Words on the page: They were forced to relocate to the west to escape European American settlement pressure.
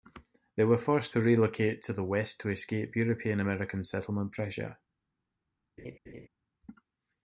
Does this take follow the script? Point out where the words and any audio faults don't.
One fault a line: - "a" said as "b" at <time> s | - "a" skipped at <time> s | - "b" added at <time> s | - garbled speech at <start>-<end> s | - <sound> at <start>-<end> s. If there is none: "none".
- laugh at 5.8-6.3 s